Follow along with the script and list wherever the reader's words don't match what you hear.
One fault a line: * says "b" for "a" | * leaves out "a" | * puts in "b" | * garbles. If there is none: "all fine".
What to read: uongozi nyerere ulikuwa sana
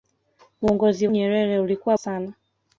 all fine